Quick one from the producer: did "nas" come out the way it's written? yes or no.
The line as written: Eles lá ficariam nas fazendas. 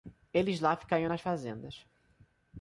yes